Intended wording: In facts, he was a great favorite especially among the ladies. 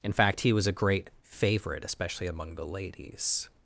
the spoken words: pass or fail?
fail